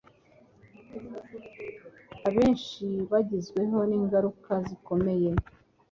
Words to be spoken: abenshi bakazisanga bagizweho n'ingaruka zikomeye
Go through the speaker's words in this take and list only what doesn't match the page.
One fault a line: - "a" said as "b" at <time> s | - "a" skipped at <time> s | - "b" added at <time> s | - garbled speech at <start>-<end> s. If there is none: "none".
- "bakazisanga" skipped at 2.9 s